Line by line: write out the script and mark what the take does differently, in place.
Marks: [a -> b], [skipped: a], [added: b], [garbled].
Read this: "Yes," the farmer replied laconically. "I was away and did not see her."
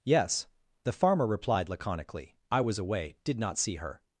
"Yes," the farmer replied laconically. "I was away [skipped: and] did not see her."